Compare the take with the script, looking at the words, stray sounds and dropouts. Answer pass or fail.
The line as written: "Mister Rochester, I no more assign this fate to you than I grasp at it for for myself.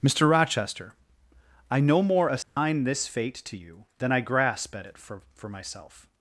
fail